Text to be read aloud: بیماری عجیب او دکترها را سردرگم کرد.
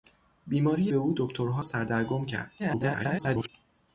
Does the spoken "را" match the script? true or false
false